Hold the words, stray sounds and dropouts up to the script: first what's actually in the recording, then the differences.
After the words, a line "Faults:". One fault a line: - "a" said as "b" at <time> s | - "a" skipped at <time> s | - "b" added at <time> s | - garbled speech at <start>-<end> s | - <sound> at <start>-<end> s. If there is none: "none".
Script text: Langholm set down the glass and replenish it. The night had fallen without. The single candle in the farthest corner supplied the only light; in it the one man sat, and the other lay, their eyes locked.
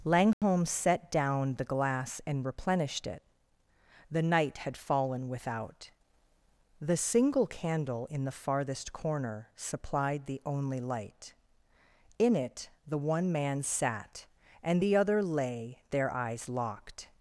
Langholm set down the glass and replenished it. The night had fallen without. The single candle in the farthest corner supplied the only light; in it the one man sat, and the other lay, their eyes locked.
Faults:
- dropout at 0.3-0.4 s
- "replenish" said as "replenished" at 2.4 s